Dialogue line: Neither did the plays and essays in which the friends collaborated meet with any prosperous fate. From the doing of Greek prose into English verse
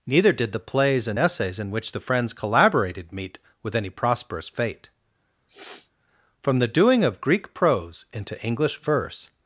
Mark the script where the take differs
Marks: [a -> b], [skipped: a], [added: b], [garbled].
Neither did the plays and essays in which the friends collaborated meet with any prosperous fate. From the doing of Greek prose into English verse